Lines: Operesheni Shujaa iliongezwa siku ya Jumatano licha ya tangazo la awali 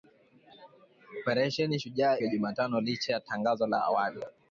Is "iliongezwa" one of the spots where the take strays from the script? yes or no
yes